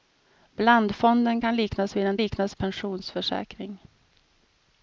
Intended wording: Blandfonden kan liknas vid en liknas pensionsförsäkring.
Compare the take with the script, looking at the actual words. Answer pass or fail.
pass